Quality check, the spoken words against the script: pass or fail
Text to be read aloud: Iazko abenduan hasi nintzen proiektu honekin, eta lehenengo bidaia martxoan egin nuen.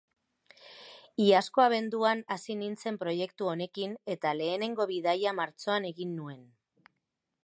pass